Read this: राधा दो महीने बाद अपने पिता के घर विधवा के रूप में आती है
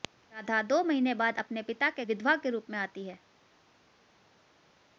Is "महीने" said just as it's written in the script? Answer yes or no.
yes